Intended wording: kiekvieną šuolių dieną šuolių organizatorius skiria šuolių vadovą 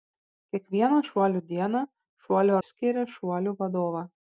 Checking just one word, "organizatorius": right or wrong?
wrong